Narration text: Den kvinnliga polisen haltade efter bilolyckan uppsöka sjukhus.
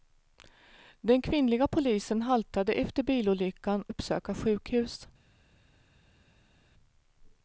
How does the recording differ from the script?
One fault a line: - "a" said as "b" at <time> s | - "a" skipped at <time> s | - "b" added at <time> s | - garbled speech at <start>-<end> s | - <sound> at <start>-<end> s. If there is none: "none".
none